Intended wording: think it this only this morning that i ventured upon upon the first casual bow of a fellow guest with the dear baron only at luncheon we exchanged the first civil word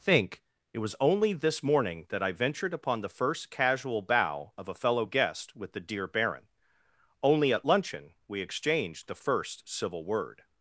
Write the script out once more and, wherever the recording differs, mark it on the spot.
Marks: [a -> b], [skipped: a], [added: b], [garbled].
think it [this -> was] only this morning that i ventured upon [skipped: upon] the first casual bow of a fellow guest with the dear baron only at luncheon we exchanged the first civil word